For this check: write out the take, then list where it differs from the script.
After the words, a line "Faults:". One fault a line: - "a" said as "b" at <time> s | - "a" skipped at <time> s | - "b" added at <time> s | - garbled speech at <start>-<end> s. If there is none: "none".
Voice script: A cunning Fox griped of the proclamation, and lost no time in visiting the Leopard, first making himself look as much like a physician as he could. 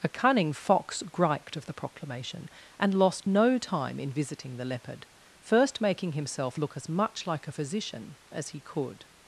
A cunning Fox griped of the proclamation, and lost no time in visiting the Leopard, first making himself look as much like a physician as he could.
Faults:
none